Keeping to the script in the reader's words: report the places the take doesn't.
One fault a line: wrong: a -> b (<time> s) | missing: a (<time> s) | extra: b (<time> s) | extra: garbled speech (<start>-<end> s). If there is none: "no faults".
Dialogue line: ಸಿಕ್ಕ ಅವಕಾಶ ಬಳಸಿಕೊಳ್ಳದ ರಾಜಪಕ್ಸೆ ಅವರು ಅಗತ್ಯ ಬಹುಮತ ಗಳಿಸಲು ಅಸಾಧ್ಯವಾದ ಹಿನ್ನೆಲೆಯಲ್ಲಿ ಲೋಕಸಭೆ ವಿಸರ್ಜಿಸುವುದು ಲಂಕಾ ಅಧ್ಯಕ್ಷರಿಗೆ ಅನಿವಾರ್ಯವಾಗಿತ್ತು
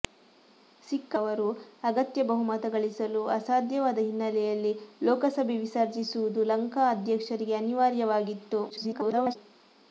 missing: ಅವಕಾಶ ಬಳಸಿಕೊಳ್ಳದ ರಾಜಪಕ್ಸೆ (1.1 s)
extra: garbled speech (8.7-9.4 s)